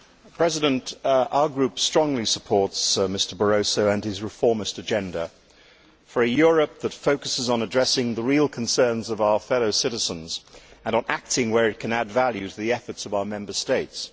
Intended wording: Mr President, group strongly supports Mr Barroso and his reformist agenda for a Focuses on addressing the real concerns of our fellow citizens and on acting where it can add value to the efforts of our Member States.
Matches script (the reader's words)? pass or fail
fail